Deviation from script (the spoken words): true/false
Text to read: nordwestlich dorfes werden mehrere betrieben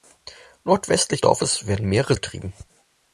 false